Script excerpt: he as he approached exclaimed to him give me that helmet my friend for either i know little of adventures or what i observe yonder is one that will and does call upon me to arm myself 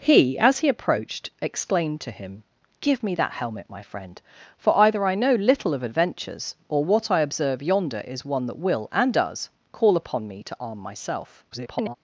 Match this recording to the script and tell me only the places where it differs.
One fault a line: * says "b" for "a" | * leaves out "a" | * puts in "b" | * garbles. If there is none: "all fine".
* garbles